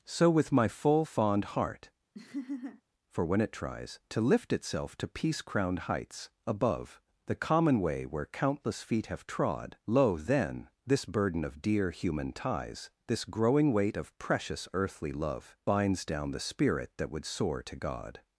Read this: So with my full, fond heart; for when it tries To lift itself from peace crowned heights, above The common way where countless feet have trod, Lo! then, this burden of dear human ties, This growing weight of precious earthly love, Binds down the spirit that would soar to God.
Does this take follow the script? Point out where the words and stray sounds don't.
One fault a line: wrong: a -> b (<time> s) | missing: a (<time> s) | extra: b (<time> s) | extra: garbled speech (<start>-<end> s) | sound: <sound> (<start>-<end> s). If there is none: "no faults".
sound: laugh (2.1-2.8 s)
wrong: from -> to (5.0 s)